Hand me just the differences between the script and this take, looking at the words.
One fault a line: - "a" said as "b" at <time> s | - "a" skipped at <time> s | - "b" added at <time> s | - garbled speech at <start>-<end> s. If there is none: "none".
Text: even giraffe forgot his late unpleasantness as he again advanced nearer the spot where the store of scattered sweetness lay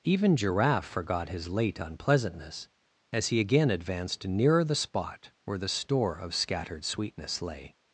none